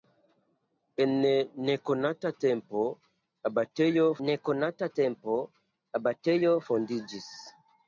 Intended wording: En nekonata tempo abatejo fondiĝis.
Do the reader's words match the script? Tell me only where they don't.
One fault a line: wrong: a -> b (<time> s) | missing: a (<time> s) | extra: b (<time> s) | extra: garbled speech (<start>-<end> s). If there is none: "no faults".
extra: nekonata tempo abatejo (4.3 s)